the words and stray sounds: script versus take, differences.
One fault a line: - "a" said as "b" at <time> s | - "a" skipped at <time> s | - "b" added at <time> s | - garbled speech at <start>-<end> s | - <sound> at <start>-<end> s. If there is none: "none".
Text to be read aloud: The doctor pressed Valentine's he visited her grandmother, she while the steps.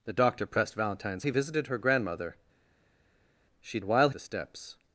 none